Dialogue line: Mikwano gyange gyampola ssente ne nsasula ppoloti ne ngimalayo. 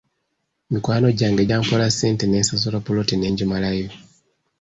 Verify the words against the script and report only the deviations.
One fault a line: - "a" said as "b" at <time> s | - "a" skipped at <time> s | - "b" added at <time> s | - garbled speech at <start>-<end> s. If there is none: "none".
none